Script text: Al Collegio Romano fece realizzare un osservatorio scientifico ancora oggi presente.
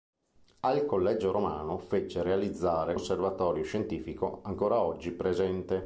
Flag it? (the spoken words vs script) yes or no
yes